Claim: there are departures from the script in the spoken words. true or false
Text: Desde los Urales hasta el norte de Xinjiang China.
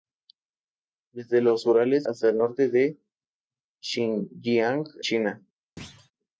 false